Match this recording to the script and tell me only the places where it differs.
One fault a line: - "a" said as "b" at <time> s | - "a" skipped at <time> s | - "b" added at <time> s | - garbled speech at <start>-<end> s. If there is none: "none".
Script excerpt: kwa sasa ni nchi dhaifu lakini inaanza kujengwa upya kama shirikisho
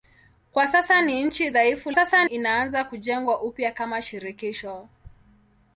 - "lakini" said as "sasa" at 1.9 s